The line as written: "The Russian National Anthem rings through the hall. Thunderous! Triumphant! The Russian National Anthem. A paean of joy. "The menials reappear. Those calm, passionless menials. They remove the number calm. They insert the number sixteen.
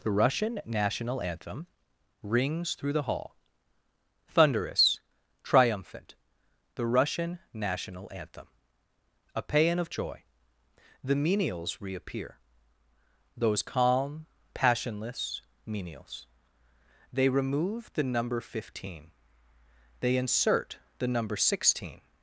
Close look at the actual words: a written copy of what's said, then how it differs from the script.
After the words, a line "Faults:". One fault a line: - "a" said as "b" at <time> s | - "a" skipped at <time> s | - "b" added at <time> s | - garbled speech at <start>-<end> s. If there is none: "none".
"The Russian National Anthem rings through the hall. Thunderous! Triumphant! The Russian National Anthem. A paean of joy. "The menials reappear. Those calm, passionless menials. They remove the number fifteen. They insert the number sixteen.
Faults:
- "calm" said as "fifteen" at 18.4 s